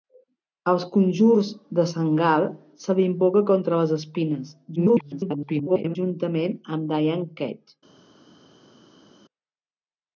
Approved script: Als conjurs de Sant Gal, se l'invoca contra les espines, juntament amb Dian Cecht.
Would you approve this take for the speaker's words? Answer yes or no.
no